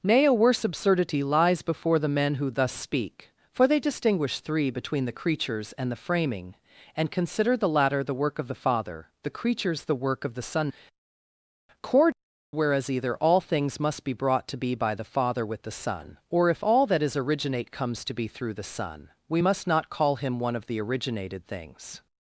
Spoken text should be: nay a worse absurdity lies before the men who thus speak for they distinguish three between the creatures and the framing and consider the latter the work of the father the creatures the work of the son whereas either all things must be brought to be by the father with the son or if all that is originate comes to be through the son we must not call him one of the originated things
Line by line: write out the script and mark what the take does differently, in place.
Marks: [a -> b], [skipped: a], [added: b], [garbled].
nay a worse absurdity lies before the men who thus speak for they distinguish three between the creatures and the framing and consider the latter the work of the father the creatures the work of the son [added: cord] whereas either all things must be brought to be by the father with the son or if all that is originate comes to be through the son we must not call him one of the originated things